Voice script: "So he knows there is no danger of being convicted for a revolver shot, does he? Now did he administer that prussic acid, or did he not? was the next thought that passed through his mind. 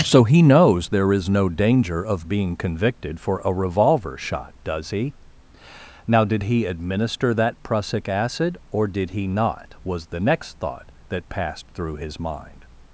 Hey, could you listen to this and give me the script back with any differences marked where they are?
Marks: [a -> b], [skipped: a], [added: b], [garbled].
"So he knows there is no danger of being convicted for a revolver shot, does he? Now did he administer that prussic acid, or did he not? was the next thought that passed through his mind.